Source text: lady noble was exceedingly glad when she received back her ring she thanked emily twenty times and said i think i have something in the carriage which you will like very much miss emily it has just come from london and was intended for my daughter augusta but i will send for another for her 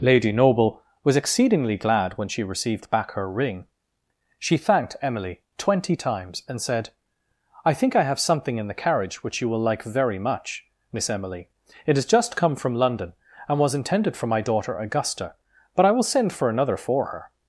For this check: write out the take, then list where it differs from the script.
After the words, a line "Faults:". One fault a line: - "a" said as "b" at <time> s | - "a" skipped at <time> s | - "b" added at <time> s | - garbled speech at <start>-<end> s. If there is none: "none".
lady noble was exceedingly glad when she received back her ring she thanked emily twenty times and said i think i have something in the carriage which you will like very much miss emily it has just come from london and was intended for my daughter augusta but i will send for another for her
Faults:
none